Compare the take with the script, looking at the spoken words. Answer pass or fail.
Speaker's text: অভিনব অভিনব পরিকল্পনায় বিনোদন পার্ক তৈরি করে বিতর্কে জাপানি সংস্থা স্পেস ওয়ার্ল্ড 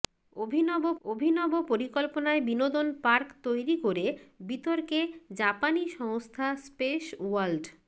pass